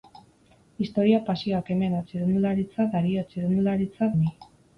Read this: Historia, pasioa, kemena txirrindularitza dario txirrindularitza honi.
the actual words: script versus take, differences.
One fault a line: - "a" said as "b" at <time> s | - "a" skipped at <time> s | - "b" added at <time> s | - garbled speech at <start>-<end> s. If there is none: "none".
none